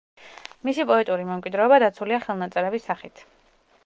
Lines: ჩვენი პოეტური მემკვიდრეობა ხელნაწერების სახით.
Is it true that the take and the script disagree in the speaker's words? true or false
true